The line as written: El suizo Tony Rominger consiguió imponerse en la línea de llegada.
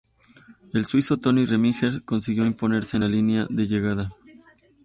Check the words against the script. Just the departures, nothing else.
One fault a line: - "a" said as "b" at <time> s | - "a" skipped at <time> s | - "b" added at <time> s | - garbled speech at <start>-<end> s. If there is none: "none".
none